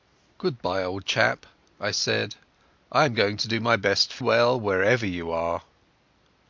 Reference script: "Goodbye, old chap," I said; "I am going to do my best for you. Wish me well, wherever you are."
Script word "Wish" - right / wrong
wrong